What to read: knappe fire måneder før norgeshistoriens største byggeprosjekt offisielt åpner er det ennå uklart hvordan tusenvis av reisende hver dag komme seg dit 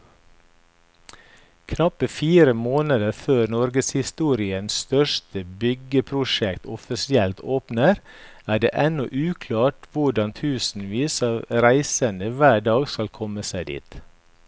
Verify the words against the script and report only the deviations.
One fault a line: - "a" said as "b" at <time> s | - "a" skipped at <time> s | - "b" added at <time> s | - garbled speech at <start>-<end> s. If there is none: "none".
- "skal" added at 12.9 s